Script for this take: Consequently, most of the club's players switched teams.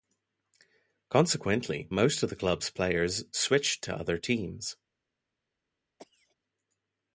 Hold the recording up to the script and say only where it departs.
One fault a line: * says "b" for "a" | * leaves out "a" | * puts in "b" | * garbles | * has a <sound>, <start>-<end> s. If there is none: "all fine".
* puts in "to other"
* has a cough, 6.0-6.4 s